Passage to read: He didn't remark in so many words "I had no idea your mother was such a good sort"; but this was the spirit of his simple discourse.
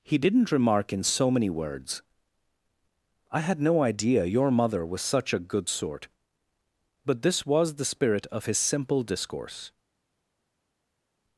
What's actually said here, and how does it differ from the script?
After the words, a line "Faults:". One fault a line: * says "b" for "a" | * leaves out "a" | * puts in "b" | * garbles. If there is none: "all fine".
He didn't remark in so many words "I had no idea your mother was such a good sort"; but this was the spirit of his simple discourse.
Faults:
all fine